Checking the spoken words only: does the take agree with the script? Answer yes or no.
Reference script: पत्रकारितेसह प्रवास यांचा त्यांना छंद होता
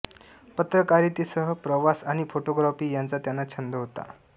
no